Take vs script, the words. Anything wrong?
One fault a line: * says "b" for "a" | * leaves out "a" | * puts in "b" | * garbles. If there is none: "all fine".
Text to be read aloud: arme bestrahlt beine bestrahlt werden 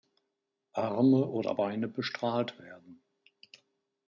* says "oder" for "bestrahlt"